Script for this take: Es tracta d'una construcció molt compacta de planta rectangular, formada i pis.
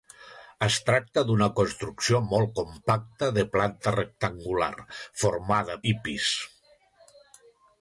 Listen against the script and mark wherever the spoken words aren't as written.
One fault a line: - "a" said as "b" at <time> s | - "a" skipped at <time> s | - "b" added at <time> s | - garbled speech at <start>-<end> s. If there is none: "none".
none